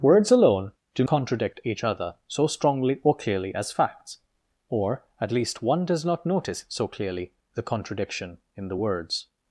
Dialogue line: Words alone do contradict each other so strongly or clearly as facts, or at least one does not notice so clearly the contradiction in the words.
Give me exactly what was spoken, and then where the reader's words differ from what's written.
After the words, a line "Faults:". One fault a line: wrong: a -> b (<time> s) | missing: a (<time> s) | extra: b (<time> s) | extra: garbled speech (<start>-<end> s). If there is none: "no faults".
Words alone do contradict each other so strongly or clearly as facts, or at least one does not notice so clearly the contradiction in the words.
Faults:
no faults